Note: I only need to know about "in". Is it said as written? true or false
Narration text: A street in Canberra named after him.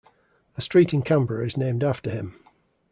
true